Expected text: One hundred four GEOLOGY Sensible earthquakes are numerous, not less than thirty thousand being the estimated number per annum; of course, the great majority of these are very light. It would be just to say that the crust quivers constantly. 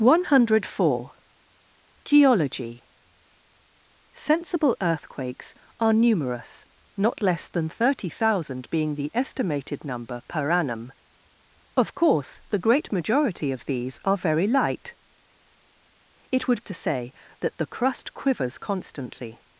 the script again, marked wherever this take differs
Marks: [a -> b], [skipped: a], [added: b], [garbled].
One hundred four GEOLOGY Sensible earthquakes are numerous, not less than thirty thousand being the estimated number per annum; of course, the great majority of these are very light. It would [skipped: be just] to say that the crust quivers constantly.